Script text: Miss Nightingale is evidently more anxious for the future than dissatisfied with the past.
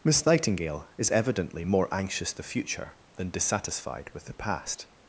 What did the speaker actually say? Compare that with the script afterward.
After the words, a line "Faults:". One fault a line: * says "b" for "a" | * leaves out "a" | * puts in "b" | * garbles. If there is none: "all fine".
Miss Nightingale is evidently more anxious the future than dissatisfied with the past.
Faults:
* leaves out "for"